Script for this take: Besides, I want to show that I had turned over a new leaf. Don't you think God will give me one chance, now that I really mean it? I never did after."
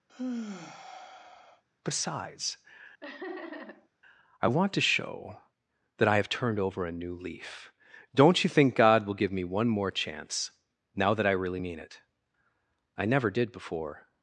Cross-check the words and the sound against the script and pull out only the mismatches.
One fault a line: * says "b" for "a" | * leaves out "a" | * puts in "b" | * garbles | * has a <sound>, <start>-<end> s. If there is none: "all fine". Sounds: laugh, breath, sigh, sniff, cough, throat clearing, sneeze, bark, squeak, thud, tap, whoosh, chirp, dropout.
* has a sigh, 0.1-1.6 s
* has a laugh, 3.0-3.9 s
* says "have" for "had"
* puts in "more"
* says "before" for "after"